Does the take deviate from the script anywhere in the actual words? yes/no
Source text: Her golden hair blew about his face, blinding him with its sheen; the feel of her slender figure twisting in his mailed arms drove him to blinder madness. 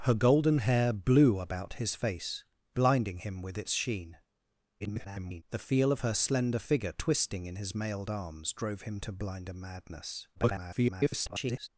yes